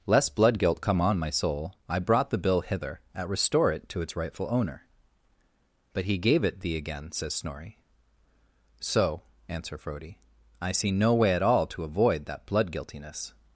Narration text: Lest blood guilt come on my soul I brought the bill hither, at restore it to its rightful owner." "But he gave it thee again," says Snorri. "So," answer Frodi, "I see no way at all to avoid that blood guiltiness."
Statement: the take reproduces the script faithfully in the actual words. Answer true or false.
true